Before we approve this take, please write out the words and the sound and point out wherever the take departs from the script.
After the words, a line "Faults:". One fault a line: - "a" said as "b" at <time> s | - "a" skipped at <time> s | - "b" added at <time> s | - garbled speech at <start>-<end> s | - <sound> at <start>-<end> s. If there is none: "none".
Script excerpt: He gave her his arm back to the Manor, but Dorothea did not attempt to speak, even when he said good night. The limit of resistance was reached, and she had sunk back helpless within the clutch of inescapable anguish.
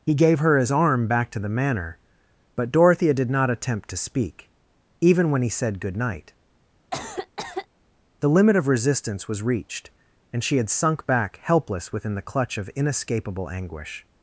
He gave her his arm back to the Manor, but Dorothea did not attempt to speak, even when he said good night. The limit of resistance was reached, and she had sunk back helpless within the clutch of inescapable anguish.
Faults:
- cough at 6.9-7.7 s